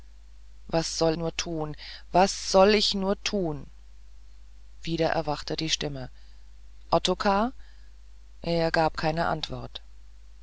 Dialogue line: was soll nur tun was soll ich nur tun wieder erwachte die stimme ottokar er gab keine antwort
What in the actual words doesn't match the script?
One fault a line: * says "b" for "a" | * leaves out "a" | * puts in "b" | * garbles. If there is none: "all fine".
all fine